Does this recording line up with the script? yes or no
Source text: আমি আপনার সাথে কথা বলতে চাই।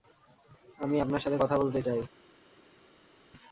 yes